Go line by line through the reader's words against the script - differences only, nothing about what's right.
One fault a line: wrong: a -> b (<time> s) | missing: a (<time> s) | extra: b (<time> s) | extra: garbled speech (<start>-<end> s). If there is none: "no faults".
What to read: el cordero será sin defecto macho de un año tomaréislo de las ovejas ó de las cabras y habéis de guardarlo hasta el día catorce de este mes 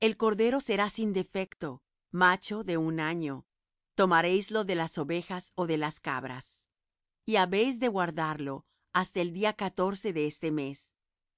no faults